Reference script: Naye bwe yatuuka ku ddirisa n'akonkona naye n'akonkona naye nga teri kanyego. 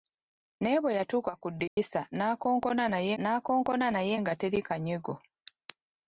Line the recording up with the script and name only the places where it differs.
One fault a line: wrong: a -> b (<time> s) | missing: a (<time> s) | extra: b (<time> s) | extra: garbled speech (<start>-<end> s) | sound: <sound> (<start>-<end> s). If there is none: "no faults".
sound: dropout (1.7-1.8 s)